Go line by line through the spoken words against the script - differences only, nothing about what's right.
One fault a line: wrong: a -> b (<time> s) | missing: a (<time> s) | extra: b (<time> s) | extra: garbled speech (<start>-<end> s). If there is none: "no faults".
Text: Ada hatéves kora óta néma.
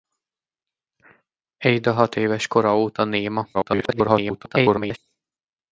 extra: garbled speech (3.5-5.0 s)